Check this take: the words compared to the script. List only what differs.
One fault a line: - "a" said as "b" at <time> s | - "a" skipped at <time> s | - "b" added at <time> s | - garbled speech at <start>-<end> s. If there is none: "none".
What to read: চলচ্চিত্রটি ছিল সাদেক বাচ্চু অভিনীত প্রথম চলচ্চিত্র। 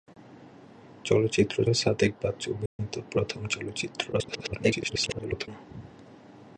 - "ছিল" skipped at 1.7 s
- garbled speech at 4.1-5.5 s